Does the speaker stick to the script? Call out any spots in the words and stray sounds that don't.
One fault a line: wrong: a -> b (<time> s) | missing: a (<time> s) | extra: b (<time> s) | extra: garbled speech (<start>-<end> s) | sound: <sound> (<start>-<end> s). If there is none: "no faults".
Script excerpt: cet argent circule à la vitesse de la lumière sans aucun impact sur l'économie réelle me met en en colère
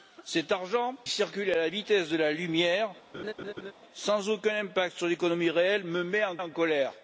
sound: laugh (3.1-3.7 s)